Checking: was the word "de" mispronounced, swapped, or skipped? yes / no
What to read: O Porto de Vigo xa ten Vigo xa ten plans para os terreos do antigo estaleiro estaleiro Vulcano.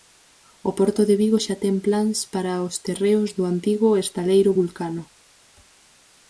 no